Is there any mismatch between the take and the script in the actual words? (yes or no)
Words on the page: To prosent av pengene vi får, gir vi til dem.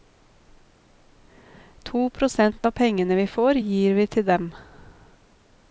no